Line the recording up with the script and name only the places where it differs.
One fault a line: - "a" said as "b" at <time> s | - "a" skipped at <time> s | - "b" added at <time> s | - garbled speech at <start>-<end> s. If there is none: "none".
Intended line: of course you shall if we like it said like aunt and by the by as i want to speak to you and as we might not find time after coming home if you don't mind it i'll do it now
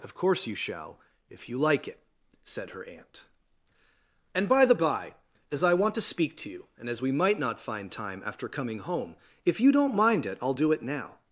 - "we" said as "you" at 1.5 s
- "like" said as "her" at 2.7 s